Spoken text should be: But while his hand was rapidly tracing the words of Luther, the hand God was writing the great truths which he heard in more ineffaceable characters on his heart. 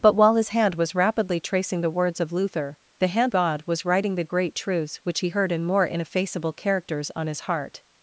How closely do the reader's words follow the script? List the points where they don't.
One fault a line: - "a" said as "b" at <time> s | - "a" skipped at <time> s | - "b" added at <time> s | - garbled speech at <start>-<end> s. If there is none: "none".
none